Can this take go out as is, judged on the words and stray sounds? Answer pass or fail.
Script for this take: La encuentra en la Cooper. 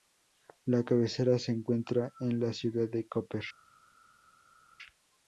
fail